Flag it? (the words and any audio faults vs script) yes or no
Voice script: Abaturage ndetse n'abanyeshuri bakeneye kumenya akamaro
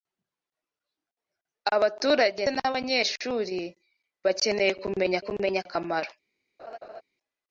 yes